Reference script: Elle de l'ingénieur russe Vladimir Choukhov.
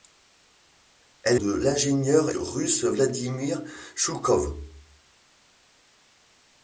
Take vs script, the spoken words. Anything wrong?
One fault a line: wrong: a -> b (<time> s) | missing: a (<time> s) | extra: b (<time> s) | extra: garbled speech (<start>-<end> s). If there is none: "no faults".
no faults